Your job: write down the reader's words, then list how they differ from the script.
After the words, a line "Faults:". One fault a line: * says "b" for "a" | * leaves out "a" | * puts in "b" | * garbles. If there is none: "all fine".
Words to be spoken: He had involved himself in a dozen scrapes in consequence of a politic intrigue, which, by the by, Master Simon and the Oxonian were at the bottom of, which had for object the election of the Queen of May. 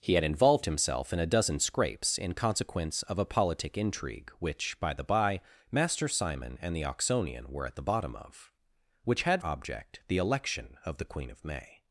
He had involved himself in a dozen scrapes in consequence of a politic intrigue, which, by the by, Master Simon and the Oxonian were at the bottom of, which had object the election of the Queen of May.
Faults:
* leaves out "for"